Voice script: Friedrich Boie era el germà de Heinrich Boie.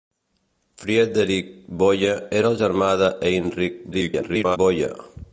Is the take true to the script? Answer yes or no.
no